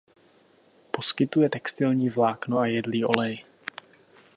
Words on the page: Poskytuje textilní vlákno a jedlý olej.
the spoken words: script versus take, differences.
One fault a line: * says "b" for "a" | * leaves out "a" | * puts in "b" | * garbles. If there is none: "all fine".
all fine